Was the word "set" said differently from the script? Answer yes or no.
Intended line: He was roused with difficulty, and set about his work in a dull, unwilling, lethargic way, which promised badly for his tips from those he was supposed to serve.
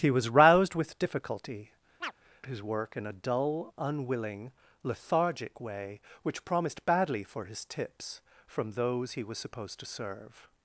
yes